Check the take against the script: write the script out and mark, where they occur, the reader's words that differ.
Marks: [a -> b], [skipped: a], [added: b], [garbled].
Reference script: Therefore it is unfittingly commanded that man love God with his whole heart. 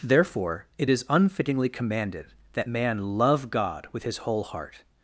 Therefore it is unfittingly commanded that man love God with his whole heart.